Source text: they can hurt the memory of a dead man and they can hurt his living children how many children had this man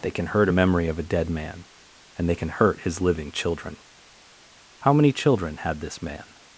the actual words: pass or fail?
fail